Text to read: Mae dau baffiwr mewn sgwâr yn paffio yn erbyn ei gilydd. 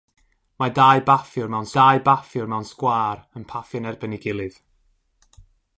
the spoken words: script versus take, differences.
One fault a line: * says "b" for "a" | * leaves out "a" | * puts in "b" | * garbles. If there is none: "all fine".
* puts in "dau baffiwr mewn"